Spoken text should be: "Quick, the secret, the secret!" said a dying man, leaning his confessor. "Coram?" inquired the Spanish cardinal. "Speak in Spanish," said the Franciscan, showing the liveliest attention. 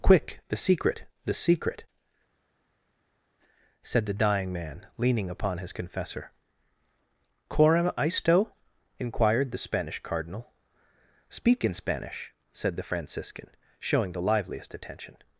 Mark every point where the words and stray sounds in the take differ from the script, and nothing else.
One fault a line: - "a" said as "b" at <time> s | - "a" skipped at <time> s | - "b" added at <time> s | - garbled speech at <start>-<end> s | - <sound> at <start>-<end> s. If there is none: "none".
- "a" said as "the" at 4.0 s
- "upon" added at 5.3 s
- "isto" added at 8.0 s